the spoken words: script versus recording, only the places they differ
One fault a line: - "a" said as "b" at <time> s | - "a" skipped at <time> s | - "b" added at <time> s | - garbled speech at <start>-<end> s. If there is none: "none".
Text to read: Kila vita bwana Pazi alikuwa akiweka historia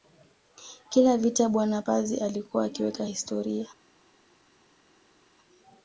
none